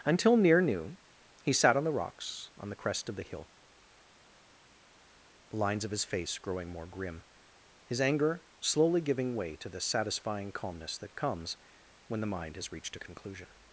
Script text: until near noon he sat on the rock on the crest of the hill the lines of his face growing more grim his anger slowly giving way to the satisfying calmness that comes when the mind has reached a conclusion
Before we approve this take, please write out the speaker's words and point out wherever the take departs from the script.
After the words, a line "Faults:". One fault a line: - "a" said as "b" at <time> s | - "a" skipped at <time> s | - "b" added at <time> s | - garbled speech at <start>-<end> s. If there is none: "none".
until near noon he sat on the rocks on the crest of the hill the lines of his face growing more grim his anger slowly giving way to the satisfying calmness that comes when the mind has reached a conclusion
Faults:
- "rock" said as "rocks" at 1.9 s